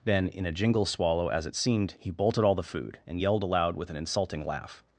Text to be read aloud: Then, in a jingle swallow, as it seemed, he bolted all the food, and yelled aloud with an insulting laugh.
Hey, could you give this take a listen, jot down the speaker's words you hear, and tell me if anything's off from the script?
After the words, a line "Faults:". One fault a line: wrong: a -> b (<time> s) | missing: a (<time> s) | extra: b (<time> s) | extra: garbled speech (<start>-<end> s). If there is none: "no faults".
Then, in a jingle swallow, as it seemed, he bolted all the food, and yelled aloud with an insulting laugh.
Faults:
no faults